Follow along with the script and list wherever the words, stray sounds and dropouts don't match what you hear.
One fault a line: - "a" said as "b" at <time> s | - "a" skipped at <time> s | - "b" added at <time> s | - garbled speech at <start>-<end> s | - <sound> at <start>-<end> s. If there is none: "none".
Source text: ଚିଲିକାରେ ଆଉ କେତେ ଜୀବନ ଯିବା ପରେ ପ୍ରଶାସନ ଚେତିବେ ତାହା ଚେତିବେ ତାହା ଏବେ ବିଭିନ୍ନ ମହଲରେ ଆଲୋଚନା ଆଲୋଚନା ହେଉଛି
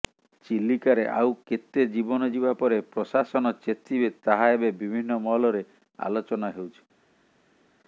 - "ଚେତିବେ ତାହା" skipped at 4.5 s
- "ଆଲୋଚନା" skipped at 6.6 s